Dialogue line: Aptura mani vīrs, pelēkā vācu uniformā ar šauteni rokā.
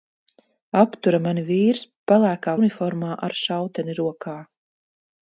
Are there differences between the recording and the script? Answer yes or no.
yes